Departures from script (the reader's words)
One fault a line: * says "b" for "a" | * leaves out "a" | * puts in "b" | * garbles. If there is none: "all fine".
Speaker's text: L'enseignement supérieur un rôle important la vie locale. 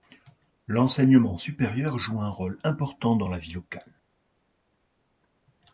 * puts in "joue"
* puts in "dans"